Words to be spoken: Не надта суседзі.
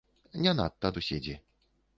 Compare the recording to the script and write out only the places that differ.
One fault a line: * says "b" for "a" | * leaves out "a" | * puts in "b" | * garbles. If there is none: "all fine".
all fine